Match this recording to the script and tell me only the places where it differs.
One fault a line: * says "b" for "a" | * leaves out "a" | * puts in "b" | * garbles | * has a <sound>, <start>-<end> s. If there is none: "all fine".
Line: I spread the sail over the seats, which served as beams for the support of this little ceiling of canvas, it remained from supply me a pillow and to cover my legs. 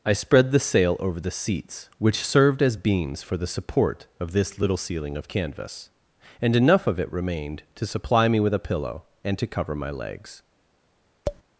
* puts in "and enough of"
* says "to" for "from"
* puts in "with"
* has a tap, 11.3-11.4 s